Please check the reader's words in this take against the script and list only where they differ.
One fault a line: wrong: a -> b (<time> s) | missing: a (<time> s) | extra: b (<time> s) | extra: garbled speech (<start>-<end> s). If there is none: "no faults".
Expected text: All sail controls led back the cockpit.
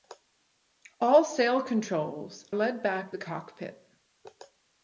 no faults